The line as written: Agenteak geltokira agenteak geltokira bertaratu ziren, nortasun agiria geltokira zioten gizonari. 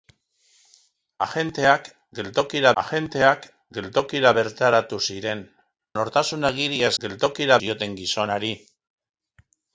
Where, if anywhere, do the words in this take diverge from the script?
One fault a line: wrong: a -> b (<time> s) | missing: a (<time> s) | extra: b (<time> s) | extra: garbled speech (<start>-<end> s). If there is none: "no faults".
no faults